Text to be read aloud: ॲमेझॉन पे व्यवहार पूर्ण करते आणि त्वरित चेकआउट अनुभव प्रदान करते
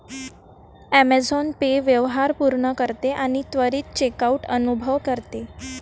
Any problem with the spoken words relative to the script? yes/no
yes